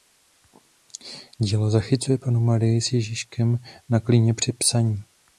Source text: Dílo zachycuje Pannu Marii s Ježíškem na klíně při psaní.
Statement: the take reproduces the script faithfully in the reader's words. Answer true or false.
true